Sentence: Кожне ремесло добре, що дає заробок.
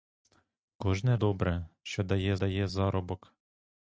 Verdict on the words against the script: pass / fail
fail